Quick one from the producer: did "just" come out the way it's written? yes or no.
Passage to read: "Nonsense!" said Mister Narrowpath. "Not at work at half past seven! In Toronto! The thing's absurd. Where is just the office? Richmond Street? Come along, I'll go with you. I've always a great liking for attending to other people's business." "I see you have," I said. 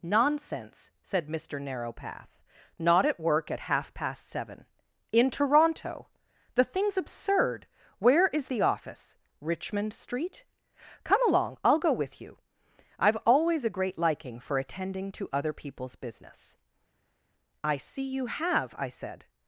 no